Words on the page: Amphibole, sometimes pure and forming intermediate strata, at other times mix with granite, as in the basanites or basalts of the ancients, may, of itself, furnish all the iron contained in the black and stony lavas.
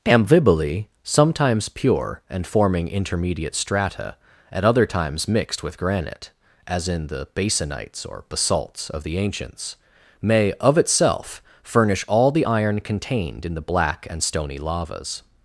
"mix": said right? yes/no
no